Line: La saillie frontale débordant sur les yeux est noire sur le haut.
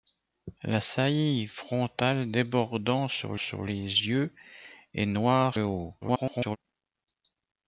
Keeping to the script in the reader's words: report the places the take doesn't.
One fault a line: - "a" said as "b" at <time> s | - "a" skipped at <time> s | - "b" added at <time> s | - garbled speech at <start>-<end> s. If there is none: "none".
- "sur" added at 3.4 s
- "sur" skipped at 5.6 s
- garbled speech at 6.0-6.6 s